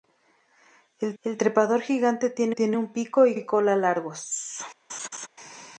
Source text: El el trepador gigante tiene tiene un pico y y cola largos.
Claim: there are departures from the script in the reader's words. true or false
false